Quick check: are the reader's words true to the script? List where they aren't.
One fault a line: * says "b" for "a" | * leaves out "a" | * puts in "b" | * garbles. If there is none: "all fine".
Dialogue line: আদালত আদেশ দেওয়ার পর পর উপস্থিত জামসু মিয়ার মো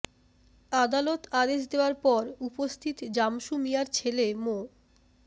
* leaves out "পর"
* puts in "ছেলে"